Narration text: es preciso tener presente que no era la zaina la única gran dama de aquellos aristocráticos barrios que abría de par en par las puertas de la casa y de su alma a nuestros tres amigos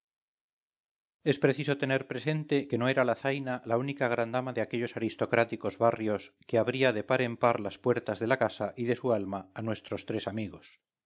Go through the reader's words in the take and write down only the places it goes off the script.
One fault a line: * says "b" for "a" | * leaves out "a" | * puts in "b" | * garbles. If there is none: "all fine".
all fine